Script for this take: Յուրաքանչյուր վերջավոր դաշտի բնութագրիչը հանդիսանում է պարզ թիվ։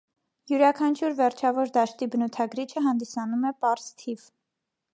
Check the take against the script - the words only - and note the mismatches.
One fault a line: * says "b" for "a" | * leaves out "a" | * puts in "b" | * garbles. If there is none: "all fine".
all fine